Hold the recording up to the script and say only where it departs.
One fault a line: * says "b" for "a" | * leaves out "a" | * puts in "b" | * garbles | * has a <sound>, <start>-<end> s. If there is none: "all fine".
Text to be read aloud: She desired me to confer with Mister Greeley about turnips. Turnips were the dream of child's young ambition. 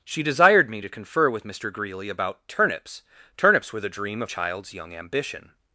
all fine